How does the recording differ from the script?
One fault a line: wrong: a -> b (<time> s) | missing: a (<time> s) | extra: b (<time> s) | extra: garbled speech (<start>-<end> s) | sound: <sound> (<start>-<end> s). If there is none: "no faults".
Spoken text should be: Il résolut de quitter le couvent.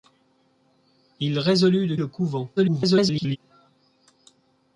missing: quitter (1.9 s)
extra: garbled speech (2.6-3.4 s)